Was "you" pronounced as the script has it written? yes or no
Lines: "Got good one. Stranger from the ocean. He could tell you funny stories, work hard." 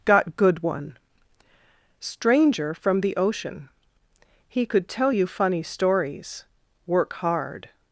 yes